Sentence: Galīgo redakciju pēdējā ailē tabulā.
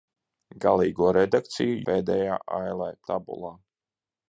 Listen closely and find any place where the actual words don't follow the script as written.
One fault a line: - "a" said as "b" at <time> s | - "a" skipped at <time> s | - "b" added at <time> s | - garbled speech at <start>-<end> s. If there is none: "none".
none